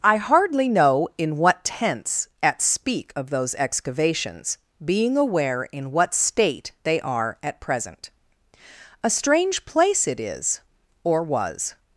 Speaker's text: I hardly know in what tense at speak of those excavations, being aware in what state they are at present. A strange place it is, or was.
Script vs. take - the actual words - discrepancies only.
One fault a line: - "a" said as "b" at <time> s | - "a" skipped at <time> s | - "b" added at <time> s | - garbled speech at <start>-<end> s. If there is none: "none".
none